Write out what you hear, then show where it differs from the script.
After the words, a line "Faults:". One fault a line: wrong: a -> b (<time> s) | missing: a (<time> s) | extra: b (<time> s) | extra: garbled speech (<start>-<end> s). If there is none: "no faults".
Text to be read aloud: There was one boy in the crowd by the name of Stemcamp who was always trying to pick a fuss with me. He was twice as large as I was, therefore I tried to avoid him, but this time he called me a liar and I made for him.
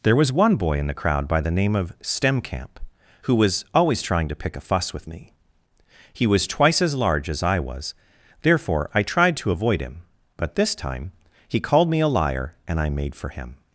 There was one boy in the crowd by the name of Stemcamp who was always trying to pick a fuss with me. He was twice as large as I was, therefore I tried to avoid him, but this time he called me a liar and I made for him.
Faults:
no faults